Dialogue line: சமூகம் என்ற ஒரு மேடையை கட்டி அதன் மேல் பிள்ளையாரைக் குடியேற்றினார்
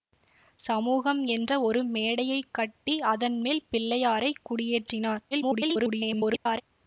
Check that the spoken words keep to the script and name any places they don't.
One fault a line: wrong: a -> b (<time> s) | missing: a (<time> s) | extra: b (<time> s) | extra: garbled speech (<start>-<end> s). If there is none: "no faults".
extra: garbled speech (5.3-6.6 s)